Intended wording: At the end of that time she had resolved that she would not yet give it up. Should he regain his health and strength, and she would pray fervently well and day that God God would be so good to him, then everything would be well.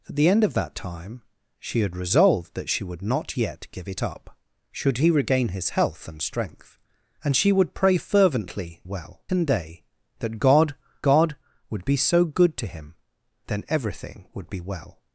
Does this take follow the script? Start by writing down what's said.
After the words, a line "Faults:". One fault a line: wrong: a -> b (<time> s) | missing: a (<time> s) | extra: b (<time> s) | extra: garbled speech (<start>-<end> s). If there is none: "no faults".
At the end of that time she had resolved that she would not yet give it up. Should he regain his health and strength, and she would pray fervently well and day that God God would be so good to him, then everything would be well.
Faults:
no faults